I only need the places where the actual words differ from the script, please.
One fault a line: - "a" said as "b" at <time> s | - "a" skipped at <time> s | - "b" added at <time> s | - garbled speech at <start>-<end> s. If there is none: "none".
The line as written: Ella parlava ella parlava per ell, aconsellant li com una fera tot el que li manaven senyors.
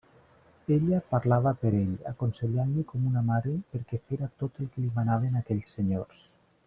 - "ella parlava" skipped at 1.5 s
- "mare perquè" added at 3.3 s
- "aquells" added at 5.4 s